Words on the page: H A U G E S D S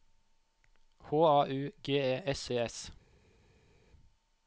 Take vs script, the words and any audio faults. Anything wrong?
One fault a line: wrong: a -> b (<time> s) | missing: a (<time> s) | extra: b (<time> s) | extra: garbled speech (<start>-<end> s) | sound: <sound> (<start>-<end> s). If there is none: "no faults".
no faults